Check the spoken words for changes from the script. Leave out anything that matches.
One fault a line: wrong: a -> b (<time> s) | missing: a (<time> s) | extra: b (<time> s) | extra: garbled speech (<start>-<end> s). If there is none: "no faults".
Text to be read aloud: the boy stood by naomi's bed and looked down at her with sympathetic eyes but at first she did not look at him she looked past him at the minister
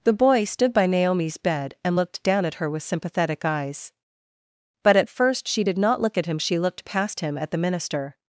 no faults